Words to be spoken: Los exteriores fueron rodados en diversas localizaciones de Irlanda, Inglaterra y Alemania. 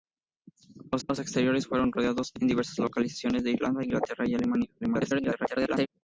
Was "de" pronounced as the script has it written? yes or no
yes